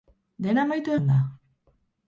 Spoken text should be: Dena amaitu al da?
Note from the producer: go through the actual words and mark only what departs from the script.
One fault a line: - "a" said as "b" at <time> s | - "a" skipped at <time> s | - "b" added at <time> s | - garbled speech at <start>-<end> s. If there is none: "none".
none